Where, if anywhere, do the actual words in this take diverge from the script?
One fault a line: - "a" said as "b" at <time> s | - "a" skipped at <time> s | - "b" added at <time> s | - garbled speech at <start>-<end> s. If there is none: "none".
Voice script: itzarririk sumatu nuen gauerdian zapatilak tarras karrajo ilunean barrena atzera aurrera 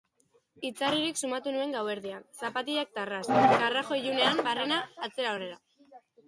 none